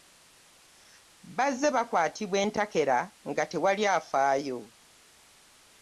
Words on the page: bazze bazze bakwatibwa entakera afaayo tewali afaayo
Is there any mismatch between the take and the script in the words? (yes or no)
yes